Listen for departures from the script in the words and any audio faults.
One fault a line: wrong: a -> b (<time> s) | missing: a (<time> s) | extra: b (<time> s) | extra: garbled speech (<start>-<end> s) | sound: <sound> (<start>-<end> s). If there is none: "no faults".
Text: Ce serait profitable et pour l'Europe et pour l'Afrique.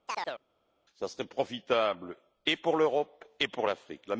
sound: chirp (0.1-0.4 s)